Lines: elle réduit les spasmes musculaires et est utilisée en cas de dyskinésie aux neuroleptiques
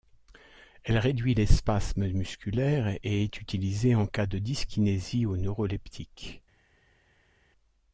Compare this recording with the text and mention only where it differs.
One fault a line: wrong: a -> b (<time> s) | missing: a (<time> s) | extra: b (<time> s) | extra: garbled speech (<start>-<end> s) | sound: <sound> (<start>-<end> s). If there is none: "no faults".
no faults